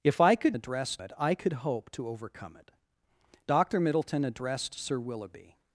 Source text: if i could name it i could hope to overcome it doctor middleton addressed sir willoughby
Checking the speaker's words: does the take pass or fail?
fail